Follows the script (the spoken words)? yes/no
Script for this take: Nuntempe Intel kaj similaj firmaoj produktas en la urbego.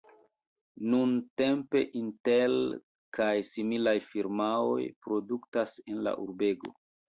yes